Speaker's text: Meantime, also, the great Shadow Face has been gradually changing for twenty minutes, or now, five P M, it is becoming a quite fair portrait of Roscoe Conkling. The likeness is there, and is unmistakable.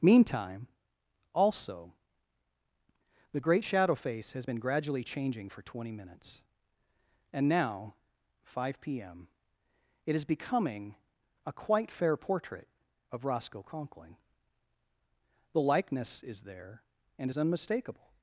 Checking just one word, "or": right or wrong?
wrong